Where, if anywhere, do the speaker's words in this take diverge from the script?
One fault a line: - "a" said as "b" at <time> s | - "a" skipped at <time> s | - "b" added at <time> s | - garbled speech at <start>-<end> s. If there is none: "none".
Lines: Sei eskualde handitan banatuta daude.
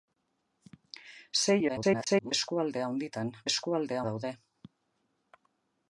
- garbled speech at 1.7-2.3 s
- "banatuta" said as "eskualde" at 3.5 s